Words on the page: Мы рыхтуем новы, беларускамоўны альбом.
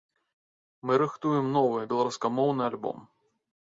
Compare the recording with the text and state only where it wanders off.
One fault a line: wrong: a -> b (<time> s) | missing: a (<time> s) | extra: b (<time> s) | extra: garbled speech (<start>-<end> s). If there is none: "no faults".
no faults